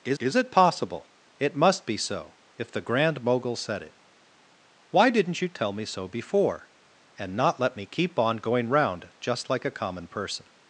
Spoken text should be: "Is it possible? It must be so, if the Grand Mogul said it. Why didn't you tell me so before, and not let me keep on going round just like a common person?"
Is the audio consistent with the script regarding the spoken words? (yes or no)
no